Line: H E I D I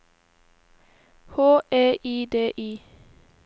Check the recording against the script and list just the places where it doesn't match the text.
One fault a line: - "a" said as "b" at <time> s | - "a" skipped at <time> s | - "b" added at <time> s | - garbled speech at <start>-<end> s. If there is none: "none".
none